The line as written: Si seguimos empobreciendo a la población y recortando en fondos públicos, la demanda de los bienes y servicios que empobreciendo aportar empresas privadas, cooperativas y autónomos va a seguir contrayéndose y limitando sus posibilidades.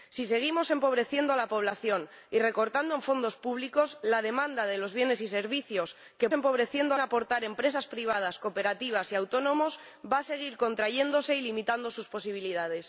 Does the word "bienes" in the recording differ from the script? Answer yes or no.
no